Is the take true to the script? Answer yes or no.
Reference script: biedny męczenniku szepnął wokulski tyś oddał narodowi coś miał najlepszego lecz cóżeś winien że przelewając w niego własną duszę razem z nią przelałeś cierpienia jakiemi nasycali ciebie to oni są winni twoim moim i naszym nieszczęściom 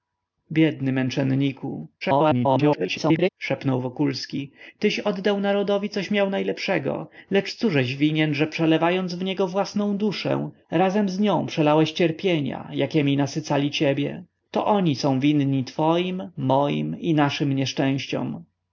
no